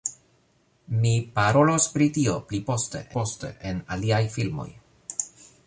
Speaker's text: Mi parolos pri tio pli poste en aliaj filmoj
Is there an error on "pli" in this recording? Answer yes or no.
no